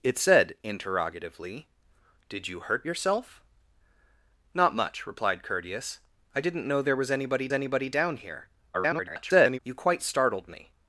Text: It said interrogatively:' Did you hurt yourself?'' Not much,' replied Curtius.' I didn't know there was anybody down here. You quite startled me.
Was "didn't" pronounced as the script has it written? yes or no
yes